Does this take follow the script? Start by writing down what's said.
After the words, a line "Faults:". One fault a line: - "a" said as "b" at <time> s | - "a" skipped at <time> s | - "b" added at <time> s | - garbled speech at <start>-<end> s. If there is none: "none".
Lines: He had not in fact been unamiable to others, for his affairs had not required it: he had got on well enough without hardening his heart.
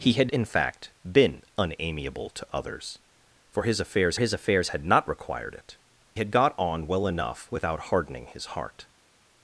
He had in fact been unamiable to others, for his affairs his affairs had not required it: had got on well enough without hardening his heart.
Faults:
- "not" skipped at 0.3 s
- "his affairs" added at 4.2 s
- "he" skipped at 5.7 s